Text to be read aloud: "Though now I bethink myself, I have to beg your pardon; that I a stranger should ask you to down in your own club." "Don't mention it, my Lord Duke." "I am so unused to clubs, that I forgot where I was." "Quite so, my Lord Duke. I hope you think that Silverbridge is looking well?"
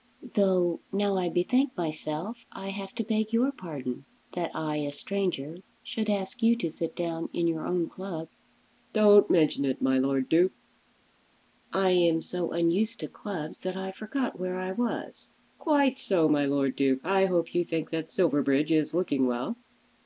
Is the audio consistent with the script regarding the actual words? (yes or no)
no